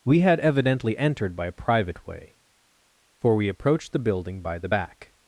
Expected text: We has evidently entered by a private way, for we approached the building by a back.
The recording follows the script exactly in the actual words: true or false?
false